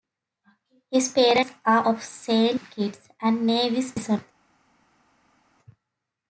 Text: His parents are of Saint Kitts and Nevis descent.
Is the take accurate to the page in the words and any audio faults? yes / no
yes